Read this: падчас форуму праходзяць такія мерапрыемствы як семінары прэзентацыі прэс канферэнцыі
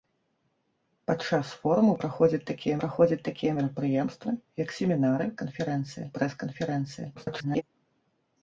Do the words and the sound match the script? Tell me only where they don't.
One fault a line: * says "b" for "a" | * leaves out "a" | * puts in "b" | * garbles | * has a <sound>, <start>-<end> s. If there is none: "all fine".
* puts in "праходзяць такія"
* says "канферэнцыі" for "прэзентацыі"
* garbles